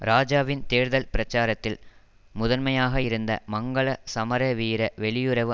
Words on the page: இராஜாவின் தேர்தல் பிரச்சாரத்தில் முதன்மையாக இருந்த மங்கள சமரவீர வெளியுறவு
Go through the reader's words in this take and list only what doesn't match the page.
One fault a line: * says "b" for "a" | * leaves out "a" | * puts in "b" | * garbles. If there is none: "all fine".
all fine